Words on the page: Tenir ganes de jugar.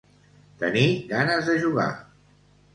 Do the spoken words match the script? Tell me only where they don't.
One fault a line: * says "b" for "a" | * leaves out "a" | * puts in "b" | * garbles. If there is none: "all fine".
all fine